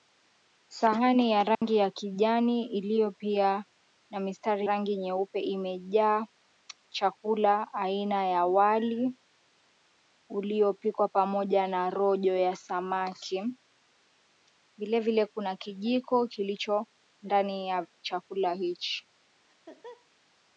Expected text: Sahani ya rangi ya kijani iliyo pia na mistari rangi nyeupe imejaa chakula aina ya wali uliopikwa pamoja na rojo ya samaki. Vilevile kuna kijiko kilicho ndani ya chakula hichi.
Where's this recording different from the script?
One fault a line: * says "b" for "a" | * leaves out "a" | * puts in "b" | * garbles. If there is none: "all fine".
all fine